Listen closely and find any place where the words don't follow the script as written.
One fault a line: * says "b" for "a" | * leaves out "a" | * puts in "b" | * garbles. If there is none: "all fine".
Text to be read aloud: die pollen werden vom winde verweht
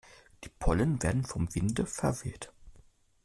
all fine